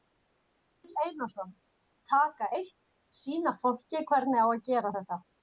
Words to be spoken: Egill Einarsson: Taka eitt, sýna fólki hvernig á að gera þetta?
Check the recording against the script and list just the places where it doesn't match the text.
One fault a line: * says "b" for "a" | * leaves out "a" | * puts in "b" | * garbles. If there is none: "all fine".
all fine